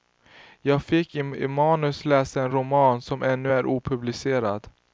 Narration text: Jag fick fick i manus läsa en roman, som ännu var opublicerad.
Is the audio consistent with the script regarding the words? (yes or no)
no